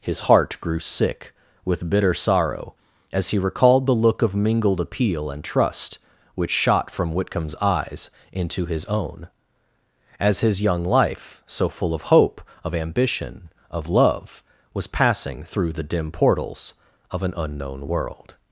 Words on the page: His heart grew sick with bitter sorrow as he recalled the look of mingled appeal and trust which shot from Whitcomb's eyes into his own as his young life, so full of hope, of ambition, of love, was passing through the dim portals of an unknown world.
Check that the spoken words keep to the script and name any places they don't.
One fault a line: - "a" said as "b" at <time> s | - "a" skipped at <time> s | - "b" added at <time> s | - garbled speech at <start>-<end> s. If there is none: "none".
none